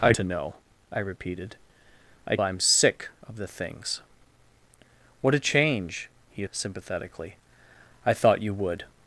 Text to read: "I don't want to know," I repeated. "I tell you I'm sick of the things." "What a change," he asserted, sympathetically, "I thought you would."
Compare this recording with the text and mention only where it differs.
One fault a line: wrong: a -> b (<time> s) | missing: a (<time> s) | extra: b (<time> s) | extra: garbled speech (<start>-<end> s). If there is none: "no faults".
missing: don't want (0.1 s)
missing: tell you (2.4 s)
missing: asserted (6.4 s)